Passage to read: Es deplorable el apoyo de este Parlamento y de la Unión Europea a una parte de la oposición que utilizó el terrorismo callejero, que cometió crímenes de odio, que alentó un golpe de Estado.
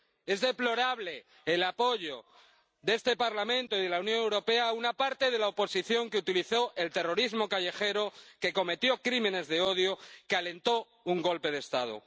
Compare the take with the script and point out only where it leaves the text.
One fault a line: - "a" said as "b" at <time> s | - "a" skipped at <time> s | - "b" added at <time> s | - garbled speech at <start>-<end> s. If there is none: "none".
none